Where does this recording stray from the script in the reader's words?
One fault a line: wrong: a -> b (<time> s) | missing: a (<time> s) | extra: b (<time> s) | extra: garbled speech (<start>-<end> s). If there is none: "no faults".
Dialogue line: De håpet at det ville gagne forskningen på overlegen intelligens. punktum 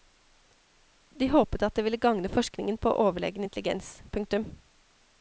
no faults